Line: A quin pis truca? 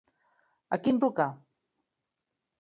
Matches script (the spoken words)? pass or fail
fail